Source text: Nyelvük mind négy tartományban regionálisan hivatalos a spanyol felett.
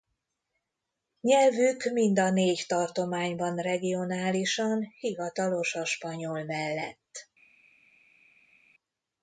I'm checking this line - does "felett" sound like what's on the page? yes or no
no